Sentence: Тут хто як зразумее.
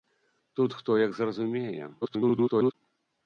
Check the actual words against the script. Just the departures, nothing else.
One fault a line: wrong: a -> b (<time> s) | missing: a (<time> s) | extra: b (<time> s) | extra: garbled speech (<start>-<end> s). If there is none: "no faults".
extra: garbled speech (2.0-2.7 s)